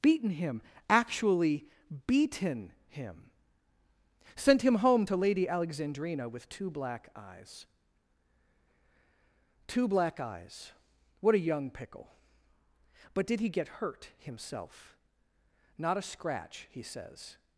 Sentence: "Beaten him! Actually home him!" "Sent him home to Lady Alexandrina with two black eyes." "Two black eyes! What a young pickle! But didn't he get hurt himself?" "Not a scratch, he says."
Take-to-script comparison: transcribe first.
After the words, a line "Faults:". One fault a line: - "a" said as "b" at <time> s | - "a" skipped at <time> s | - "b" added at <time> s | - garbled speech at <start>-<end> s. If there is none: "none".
"Beaten him! Actually beaten him!" "Sent him home to Lady Alexandrina with two black eyes." "Two black eyes! What a young pickle! But did he get hurt himself?" "Not a scratch, he says."
Faults:
- "home" said as "beaten" at 2.1 s
- "didn't" said as "did" at 13.3 s